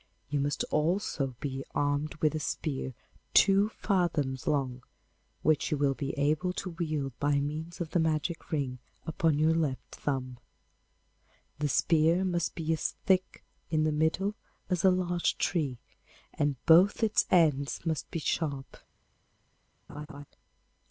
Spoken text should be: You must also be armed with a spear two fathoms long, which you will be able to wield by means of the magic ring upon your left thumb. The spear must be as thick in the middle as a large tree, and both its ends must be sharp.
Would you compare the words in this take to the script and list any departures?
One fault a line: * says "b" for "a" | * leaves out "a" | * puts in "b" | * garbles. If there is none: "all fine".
all fine